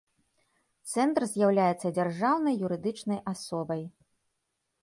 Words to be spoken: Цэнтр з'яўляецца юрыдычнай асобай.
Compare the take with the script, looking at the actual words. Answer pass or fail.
fail